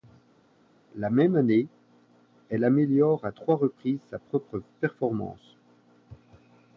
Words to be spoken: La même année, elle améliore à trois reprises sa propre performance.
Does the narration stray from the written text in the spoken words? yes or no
no